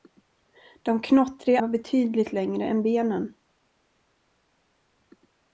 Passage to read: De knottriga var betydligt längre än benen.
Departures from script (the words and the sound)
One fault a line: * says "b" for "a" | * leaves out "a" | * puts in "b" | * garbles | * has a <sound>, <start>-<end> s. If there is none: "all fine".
all fine